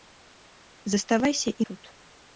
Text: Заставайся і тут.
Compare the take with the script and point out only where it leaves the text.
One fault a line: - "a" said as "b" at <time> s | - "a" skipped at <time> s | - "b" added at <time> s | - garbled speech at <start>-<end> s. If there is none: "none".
none